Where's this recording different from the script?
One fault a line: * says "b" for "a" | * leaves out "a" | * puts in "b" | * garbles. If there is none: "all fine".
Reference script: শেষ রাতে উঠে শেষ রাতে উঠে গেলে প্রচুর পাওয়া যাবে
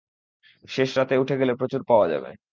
* leaves out "শেষ রাতে উঠে"